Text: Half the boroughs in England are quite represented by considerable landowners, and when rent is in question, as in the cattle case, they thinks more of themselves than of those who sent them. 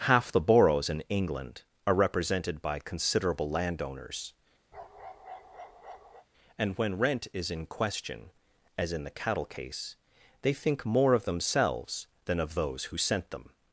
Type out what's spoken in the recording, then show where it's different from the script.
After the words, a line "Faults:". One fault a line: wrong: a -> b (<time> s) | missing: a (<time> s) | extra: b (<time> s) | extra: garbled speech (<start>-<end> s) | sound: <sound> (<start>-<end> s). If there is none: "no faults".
Half the boroughs in England are represented by considerable landowners, and when rent is in question, as in the cattle case, they think more of themselves than of those who sent them.
Faults:
missing: quite (1.9 s)
sound: bark (4.7-6.3 s)
wrong: thinks -> think (10.5 s)